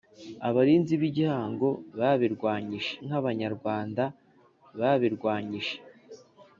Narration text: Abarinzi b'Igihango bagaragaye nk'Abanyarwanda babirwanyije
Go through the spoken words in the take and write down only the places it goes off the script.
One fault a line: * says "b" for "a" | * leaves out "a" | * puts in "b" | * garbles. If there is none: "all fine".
* says "babirwanyije" for "bagaragaye"